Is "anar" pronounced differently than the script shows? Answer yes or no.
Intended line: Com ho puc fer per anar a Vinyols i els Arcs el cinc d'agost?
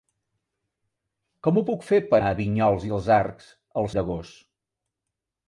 yes